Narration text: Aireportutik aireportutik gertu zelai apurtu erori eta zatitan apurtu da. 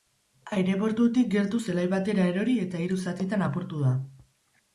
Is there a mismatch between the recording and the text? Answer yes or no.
yes